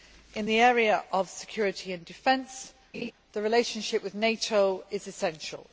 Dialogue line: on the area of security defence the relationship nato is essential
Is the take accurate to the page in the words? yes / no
no